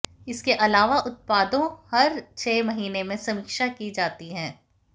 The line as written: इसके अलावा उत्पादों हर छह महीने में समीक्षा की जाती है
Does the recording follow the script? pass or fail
pass